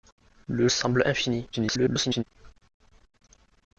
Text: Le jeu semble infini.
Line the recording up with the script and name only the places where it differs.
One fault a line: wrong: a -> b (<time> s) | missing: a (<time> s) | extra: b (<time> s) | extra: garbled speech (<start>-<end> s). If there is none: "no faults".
missing: jeu (0.7 s)
extra: garbled speech (1.5-2.2 s)